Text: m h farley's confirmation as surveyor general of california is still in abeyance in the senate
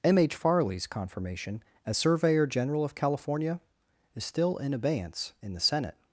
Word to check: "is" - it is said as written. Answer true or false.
true